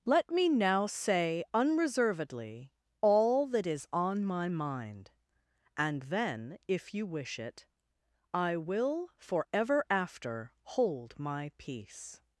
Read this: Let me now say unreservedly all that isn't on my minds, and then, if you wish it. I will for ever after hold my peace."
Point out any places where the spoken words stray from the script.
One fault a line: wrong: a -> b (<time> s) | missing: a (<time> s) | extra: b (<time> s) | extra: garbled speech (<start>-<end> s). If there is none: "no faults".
wrong: isn't -> is (3.7 s)
wrong: minds -> mind (4.5 s)